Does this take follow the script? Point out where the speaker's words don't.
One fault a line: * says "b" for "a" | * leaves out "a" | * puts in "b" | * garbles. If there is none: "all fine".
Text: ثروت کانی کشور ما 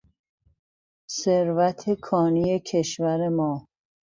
all fine